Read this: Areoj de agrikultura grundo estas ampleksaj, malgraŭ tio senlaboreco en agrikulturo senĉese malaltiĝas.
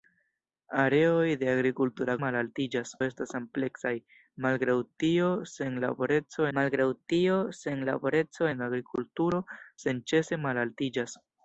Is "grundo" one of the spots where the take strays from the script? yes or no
yes